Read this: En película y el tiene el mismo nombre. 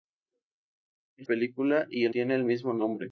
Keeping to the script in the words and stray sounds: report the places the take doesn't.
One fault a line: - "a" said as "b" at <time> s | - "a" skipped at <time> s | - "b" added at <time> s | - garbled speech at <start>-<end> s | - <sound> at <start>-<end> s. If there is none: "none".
none